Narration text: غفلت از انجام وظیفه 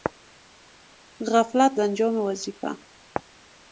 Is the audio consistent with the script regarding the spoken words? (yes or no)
no